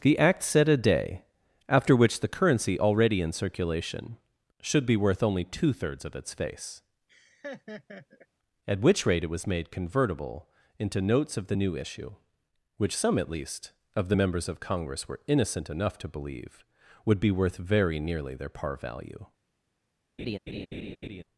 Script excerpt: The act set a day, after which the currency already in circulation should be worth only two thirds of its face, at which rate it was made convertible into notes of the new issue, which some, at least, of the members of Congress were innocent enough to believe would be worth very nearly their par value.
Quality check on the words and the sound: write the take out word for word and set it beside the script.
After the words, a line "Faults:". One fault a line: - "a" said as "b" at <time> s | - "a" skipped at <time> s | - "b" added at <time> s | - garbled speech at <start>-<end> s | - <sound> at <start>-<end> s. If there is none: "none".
The act set a day, after which the currency already in circulation should be worth only two thirds of its face, at which rate it was made convertible into notes of the new issue, which some, at least, of the members of Congress were innocent enough to believe would be worth very nearly their par value.
Faults:
- laugh at 7.1-8.3 s
- laugh at 20.2-21.2 s